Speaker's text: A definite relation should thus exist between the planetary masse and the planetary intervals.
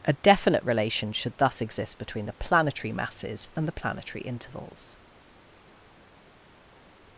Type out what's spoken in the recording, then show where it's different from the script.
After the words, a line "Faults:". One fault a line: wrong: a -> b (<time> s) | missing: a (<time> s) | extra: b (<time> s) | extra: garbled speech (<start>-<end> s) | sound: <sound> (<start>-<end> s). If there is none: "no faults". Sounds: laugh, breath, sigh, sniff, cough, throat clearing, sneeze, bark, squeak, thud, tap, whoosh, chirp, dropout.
A definite relation should thus exist between the planetary masses and the planetary intervals.
Faults:
wrong: masse -> masses (2.9 s)